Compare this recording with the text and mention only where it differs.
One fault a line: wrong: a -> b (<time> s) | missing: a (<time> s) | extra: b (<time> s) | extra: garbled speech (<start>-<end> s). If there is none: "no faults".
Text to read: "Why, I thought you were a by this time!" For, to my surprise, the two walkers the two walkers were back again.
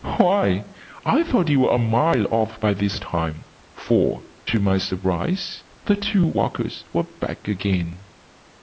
extra: mile off (1.8 s)
missing: the two walkers (6.9 s)